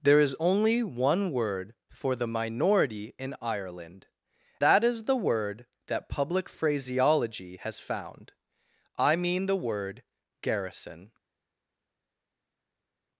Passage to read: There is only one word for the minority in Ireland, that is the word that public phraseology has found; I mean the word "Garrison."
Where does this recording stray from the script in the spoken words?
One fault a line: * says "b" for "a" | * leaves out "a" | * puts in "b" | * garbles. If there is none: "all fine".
all fine